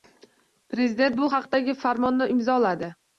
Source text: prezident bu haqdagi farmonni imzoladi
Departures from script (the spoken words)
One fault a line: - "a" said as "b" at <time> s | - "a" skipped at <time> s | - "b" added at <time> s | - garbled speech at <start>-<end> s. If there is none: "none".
none